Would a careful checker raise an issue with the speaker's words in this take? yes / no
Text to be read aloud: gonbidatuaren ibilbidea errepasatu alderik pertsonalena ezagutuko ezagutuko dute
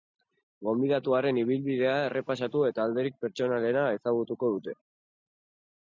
yes